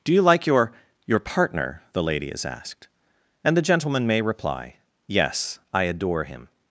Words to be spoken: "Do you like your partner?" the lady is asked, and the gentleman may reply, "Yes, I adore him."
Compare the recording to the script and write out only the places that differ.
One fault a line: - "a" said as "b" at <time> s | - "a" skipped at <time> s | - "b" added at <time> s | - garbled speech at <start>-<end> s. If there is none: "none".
- "your" added at 1.1 s